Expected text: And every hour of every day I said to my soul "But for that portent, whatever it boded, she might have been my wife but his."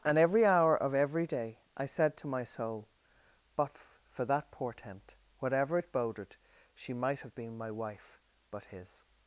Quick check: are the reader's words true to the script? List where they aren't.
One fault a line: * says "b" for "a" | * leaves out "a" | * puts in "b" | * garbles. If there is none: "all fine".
all fine